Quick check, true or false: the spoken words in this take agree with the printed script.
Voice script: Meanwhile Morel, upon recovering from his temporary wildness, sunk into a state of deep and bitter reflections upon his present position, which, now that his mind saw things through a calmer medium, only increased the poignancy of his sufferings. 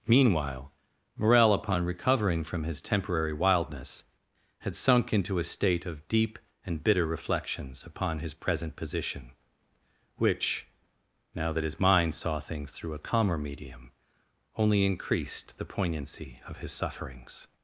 false